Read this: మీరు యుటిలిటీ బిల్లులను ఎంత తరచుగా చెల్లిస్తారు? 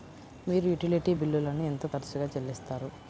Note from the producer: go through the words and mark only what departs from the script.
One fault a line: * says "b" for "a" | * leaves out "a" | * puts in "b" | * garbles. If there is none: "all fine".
all fine